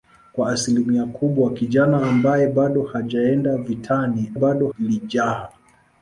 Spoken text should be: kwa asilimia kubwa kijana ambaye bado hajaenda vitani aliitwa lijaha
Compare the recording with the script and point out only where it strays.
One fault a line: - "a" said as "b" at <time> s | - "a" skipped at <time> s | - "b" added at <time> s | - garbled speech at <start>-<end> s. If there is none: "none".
- "aliitwa" said as "bado" at 4.3 s